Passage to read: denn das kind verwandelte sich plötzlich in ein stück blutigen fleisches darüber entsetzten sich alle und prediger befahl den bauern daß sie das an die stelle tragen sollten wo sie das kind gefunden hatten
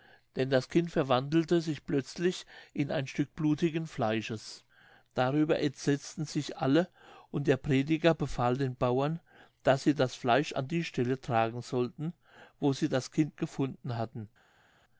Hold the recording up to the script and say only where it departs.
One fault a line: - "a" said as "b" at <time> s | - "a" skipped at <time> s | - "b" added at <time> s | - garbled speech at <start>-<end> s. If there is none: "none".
- "der" added at 7.5 s
- "fleisch" added at 10.2 s